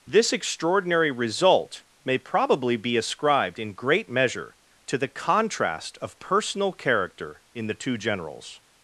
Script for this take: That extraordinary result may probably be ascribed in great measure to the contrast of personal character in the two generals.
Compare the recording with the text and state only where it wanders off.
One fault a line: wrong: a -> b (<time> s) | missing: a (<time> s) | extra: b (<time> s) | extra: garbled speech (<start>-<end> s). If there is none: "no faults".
wrong: That -> This (0.1 s)